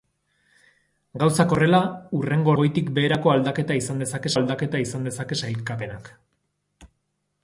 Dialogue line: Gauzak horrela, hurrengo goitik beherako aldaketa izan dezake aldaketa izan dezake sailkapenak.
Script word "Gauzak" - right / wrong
right